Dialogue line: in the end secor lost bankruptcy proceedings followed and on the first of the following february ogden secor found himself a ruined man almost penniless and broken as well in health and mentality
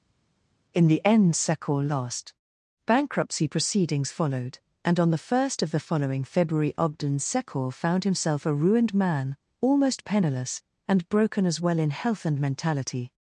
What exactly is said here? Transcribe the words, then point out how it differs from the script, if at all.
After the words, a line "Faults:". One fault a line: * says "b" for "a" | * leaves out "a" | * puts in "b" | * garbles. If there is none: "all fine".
in the end secor lost bankruptcy proceedings followed and on the first of the following february ogden secor found himself a ruined man almost penniless and broken as well in health and mentality
Faults:
all fine